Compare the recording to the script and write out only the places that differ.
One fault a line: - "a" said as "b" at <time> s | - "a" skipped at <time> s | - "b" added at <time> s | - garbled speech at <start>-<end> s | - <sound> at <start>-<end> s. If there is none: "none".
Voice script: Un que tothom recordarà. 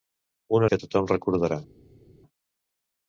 none